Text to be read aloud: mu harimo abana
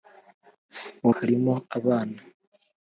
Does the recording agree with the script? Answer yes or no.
yes